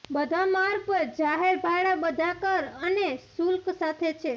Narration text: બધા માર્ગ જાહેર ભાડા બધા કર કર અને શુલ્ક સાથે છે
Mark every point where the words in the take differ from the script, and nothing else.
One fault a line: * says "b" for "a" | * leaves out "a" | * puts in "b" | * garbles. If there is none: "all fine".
* puts in "પર"
* leaves out "કર"